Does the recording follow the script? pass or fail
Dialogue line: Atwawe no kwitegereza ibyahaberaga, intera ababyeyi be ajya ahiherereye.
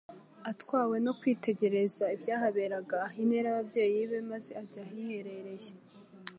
fail